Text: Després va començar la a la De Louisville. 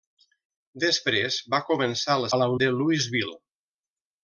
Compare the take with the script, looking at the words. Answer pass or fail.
pass